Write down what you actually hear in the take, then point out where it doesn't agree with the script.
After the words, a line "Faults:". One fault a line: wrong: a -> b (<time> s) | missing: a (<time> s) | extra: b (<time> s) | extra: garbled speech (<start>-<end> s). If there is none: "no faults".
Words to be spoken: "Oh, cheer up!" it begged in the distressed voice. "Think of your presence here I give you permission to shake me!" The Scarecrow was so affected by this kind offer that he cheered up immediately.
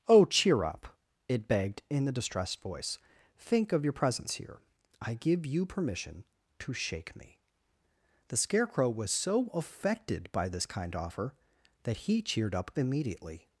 "Oh, cheer up!" it begged in the distressed voice. "Think of your presence here I give you permission to shake me!" The Scarecrow was so affected by this kind offer that he cheered up immediately.
Faults:
no faults